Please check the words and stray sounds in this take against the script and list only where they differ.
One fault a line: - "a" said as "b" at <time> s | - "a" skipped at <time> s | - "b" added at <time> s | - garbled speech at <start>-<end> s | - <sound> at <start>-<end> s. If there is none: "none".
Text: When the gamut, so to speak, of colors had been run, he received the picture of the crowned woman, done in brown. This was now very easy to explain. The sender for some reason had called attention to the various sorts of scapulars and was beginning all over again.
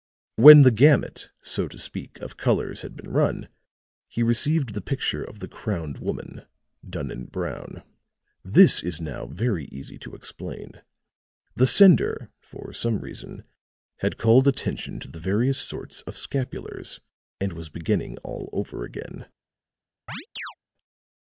- "was" said as "is" at 8.8 s
- chirp at 20.1-20.5 s